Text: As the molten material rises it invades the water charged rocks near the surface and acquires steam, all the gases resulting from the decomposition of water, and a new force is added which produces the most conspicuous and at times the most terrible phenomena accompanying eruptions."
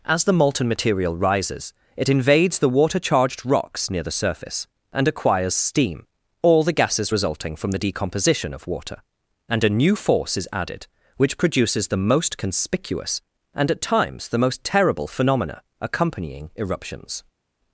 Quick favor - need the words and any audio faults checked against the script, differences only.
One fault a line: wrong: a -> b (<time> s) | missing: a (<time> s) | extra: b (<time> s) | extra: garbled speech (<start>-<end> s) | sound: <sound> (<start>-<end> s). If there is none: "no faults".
no faults